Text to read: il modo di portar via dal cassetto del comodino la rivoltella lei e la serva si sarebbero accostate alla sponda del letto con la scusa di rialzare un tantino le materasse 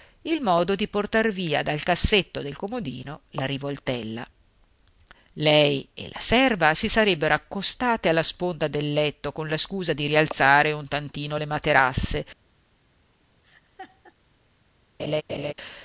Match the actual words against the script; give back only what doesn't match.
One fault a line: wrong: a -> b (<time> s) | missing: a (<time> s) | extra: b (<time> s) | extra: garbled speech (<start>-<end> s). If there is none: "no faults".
no faults